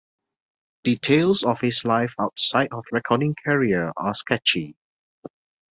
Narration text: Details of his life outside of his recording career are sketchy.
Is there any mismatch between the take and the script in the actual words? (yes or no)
yes